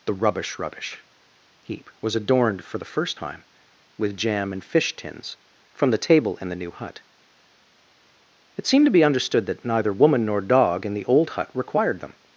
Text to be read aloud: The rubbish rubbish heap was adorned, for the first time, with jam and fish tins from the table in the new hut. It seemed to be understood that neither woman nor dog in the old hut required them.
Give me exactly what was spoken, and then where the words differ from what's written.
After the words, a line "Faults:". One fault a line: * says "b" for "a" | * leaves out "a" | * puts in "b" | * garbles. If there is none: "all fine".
The rubbish rubbish heap was adorned, for the first time, with jam and fish tins from the table in the new hut. It seemed to be understood that neither woman nor dog in the old hut required them.
Faults:
all fine